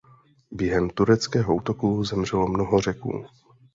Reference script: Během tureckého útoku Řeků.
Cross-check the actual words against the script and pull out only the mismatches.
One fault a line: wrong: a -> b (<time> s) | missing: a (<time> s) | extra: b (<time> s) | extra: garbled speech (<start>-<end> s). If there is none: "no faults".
extra: zemřelo mnoho (2.0 s)